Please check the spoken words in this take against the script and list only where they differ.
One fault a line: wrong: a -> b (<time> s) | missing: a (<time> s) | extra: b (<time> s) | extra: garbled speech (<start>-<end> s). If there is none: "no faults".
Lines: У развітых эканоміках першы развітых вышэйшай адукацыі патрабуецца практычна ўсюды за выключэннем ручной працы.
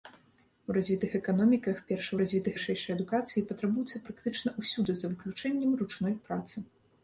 no faults